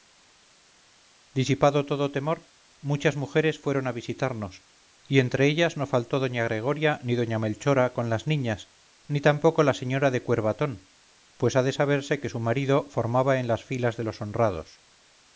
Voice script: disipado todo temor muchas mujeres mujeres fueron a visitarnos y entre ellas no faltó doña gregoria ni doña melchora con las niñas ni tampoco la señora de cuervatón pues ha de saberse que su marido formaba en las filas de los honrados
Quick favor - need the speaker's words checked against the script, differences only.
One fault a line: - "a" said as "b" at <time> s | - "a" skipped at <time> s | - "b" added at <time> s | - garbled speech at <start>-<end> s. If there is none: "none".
- "mujeres" skipped at 3.6 s